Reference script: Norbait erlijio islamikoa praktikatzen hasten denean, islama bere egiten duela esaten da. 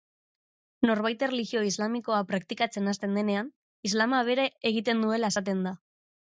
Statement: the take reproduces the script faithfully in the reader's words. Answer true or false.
true